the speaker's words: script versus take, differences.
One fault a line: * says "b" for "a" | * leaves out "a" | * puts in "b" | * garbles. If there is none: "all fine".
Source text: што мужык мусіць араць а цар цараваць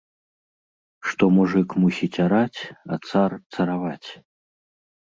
all fine